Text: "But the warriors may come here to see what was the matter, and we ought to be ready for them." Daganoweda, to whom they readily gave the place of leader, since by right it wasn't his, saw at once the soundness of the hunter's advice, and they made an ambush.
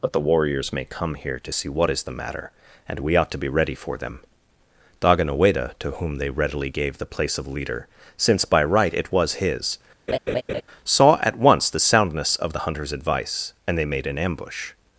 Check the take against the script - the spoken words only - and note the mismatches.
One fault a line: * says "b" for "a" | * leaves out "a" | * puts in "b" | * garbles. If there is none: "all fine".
* says "is" for "was"
* says "was" for "wasn't"